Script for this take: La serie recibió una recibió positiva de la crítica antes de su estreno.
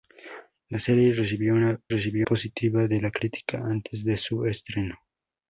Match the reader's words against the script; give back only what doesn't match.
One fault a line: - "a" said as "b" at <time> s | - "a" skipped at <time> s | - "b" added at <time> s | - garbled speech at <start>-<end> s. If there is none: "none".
none